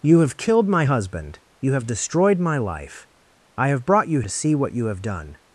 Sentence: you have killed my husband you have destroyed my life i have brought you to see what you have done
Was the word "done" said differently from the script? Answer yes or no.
no